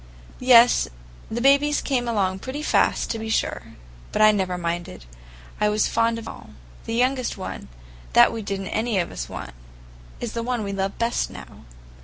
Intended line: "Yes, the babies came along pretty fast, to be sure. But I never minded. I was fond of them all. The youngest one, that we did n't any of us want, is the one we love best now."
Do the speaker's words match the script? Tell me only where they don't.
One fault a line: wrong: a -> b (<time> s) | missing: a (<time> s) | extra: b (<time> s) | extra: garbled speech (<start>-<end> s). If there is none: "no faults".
missing: them (6.3 s)